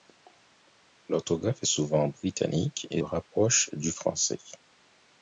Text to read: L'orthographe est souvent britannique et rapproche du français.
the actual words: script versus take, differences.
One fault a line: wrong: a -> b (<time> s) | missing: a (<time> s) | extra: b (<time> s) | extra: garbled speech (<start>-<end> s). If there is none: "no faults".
no faults